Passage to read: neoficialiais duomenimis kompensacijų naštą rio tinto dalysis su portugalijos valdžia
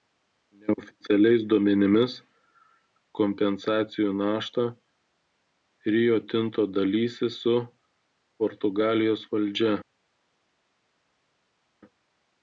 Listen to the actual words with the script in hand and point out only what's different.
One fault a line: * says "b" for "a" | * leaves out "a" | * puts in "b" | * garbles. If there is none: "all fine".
all fine